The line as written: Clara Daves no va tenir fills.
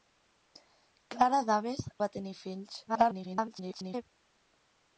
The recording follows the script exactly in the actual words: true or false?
false